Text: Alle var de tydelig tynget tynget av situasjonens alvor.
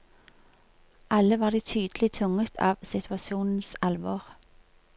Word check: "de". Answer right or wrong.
right